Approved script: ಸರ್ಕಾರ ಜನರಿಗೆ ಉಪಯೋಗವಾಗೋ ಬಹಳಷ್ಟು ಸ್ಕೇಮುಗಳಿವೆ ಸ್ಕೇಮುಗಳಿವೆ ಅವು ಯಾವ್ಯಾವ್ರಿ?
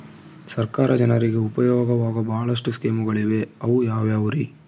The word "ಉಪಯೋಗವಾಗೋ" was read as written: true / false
true